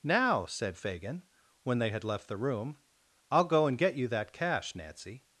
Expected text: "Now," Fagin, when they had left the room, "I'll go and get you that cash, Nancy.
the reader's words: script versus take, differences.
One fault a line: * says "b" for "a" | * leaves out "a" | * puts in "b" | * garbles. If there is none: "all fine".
* puts in "said"